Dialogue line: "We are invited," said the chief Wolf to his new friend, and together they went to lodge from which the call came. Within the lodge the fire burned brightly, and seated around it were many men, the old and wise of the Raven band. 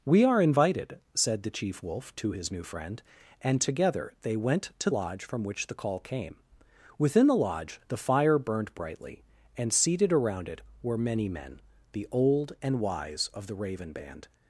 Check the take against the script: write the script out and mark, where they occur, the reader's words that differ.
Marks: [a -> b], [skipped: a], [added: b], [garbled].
"We are invited," said the chief Wolf to his new friend, and together they went to lodge from which the call came. Within the lodge the fire burned brightly, and seated around it were many men, the old and wise of the Raven band.